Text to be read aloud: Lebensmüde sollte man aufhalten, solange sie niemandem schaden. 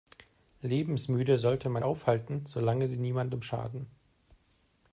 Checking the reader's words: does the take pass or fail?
pass